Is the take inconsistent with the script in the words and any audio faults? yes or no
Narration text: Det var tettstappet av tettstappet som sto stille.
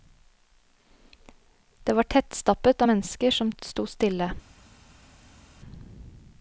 yes